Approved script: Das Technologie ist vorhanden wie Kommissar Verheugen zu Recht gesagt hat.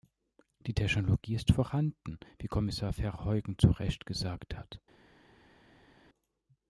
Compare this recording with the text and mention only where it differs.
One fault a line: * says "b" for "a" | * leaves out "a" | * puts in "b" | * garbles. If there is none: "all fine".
* says "Die" for "Das"